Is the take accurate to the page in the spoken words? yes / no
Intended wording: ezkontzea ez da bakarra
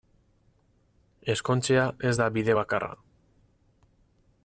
no